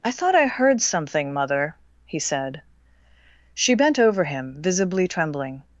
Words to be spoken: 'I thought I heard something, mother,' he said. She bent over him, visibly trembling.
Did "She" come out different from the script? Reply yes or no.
no